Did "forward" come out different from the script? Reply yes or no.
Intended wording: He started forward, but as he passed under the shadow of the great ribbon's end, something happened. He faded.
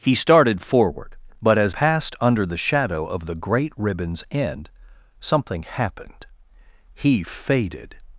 no